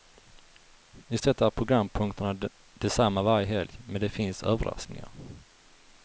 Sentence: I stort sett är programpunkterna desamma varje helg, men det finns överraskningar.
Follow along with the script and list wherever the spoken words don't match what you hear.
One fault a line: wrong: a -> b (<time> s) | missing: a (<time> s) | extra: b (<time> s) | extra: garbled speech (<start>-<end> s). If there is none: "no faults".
missing: stort (1.2 s)